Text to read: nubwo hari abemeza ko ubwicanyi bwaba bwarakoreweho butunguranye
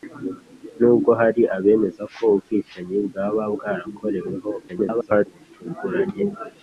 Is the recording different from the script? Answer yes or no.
yes